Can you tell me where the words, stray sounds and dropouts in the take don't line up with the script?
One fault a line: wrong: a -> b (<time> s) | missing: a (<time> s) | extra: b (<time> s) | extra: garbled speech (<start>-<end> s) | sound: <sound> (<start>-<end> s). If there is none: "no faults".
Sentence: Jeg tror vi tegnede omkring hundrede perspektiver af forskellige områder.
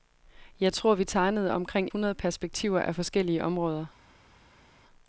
no faults